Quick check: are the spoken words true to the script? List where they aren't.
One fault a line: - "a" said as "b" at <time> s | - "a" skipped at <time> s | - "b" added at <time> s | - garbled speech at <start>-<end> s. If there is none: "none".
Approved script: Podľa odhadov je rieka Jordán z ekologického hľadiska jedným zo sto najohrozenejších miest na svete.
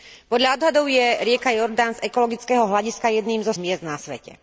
- "sto najohrozenejších" skipped at 3.5 s